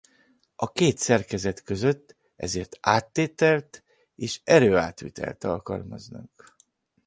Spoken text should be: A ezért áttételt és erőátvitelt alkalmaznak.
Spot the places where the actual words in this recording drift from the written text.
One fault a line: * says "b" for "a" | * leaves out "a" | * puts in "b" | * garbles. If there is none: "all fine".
* puts in "két szerkezet között"